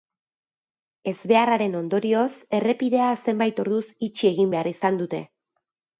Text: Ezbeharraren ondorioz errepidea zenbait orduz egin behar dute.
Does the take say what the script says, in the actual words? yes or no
no